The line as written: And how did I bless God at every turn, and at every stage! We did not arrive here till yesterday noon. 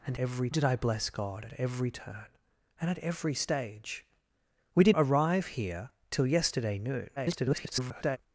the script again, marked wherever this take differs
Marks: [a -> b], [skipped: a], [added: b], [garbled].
And [how -> every] did I bless God at every turn, and at every stage! We did [skipped: not] arrive here till yesterday noon. [garbled]